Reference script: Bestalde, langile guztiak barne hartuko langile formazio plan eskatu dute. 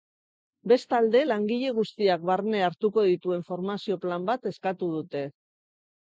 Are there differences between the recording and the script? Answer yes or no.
yes